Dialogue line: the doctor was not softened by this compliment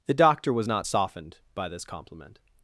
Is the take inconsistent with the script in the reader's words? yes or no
no